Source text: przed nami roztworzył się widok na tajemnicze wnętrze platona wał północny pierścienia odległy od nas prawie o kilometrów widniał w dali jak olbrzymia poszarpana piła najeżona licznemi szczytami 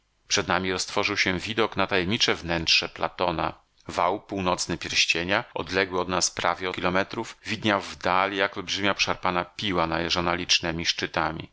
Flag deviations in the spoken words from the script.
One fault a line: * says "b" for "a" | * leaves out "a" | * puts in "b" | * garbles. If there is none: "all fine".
all fine